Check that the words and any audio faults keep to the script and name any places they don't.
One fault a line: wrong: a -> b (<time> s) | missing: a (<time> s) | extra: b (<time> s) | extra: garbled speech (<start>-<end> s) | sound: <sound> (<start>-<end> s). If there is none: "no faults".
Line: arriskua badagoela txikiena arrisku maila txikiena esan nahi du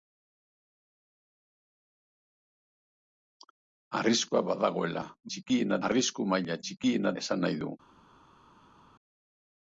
no faults